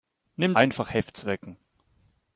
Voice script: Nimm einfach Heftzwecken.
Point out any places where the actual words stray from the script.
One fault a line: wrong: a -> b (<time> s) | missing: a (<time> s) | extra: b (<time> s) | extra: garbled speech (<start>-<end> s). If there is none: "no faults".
no faults